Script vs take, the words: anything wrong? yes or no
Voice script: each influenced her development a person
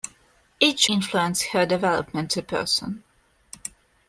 no